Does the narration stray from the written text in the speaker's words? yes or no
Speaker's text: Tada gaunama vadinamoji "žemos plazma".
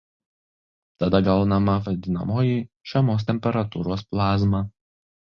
yes